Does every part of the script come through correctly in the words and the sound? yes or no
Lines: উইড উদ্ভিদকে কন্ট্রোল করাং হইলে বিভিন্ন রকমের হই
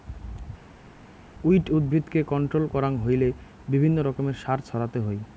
no